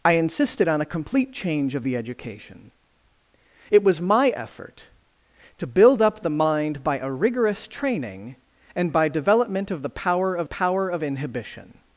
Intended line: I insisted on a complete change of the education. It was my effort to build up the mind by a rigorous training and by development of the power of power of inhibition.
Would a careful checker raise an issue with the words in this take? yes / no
no